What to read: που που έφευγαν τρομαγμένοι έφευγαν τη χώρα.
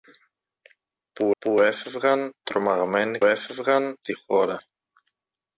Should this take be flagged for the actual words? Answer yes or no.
no